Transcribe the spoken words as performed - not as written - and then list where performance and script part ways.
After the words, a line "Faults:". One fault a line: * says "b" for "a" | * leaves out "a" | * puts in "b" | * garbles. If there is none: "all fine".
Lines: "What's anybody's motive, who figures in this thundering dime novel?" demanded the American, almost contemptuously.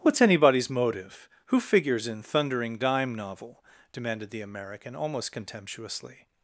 "What's anybody's motive, who figures in thundering dime novel?" demanded the American, almost contemptuously.
Faults:
* leaves out "this"